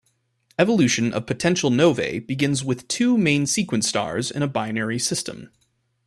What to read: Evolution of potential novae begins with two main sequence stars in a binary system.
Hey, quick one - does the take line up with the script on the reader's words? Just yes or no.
yes